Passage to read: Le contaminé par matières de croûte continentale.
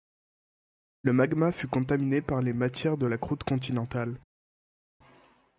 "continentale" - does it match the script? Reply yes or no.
yes